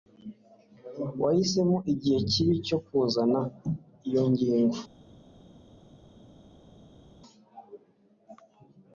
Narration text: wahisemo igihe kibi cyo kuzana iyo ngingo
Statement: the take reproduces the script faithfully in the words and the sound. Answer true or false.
true